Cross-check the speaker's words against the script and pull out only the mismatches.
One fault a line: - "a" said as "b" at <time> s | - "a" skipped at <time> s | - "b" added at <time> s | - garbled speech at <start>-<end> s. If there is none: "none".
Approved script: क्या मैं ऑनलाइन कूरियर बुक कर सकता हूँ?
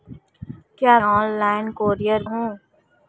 - "मैं" skipped at 1.0 s
- "बुक कर सकता" skipped at 2.2 s